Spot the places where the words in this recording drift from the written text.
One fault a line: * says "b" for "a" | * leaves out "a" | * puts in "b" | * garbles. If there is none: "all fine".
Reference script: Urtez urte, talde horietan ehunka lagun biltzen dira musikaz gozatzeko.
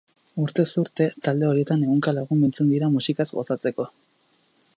all fine